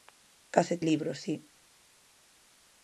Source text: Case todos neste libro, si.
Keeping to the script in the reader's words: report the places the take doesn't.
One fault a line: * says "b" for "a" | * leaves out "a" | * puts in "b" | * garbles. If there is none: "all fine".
* leaves out "todos neste"